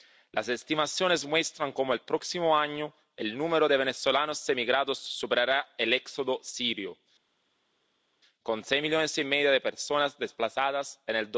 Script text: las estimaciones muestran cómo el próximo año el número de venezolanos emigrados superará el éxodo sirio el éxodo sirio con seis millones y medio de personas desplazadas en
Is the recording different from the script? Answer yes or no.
yes